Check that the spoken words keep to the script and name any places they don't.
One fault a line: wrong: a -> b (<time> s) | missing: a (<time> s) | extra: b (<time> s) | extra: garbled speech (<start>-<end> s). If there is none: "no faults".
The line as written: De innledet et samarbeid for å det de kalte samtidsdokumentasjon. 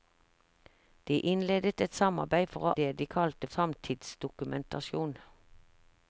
no faults